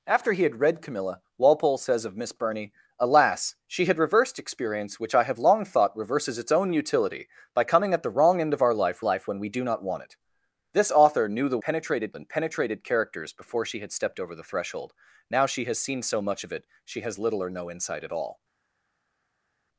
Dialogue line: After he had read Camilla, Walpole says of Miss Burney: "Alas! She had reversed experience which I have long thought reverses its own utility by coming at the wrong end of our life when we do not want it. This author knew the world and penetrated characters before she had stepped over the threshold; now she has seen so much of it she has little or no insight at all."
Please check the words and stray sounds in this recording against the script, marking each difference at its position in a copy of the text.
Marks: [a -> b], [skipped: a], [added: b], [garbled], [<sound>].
After he had read Camilla, Walpole says of Miss Burney: "Alas! She had reversed experience which I have long thought reverses its own utility by coming at the wrong end of our life [added: life] when we do not want it. This author knew the [world -> penetrated] and penetrated characters before she had stepped over the threshold; now she has seen so much of it she has little or no insight at all."